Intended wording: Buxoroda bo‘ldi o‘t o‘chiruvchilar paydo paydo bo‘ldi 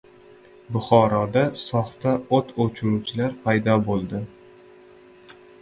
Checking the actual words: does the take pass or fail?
fail